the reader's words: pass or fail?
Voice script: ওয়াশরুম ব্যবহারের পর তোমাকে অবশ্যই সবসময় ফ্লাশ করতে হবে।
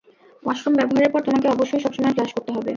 pass